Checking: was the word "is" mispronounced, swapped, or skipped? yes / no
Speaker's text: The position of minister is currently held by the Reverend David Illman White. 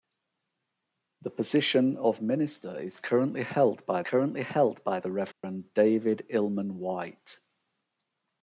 no